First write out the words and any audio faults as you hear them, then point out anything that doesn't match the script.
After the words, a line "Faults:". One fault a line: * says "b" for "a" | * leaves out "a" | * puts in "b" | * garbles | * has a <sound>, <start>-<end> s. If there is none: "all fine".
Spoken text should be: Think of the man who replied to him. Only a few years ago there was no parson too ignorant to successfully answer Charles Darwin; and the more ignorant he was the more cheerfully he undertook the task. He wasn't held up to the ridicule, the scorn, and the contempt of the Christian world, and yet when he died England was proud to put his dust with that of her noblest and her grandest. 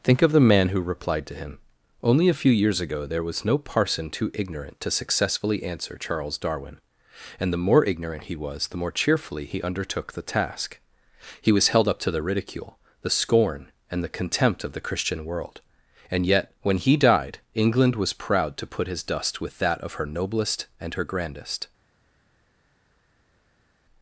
Think of the man who replied to him. Only a few years ago there was no parson too ignorant to successfully answer Charles Darwin; and the more ignorant he was the more cheerfully he undertook the task. He was held up to the ridicule, the scorn, and the contempt of the Christian world, and yet when he died England was proud to put his dust with that of her noblest and her grandest.
Faults:
* says "was" for "wasn't"